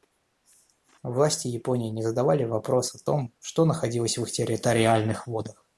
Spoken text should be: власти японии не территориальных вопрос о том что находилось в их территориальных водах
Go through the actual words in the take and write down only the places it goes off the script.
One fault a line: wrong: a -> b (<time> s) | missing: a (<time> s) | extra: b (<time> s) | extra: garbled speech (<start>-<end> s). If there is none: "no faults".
wrong: территориальных -> задавали (2.0 s)